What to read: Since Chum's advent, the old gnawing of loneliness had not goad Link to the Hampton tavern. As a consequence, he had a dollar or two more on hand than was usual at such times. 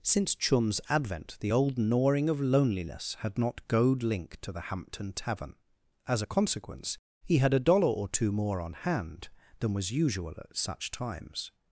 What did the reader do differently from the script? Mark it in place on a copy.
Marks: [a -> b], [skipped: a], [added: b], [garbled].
Since Chum's advent, the old gnawing of loneliness had not goad Link to the Hampton tavern. As a consequence, he had a dollar or two more on hand than was usual at such times.